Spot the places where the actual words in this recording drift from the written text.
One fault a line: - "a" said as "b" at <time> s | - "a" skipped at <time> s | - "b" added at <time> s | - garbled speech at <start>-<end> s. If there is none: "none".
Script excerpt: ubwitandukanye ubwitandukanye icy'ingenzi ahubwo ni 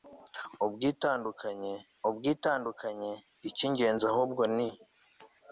none